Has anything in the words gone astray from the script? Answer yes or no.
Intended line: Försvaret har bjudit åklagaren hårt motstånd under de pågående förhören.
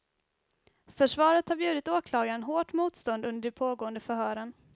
no